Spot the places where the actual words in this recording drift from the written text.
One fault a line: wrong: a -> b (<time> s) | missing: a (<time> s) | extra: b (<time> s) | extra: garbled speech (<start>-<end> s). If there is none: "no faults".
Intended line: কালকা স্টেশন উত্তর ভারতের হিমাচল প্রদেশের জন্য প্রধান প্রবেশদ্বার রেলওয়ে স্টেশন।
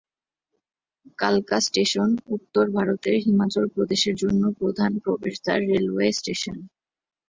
no faults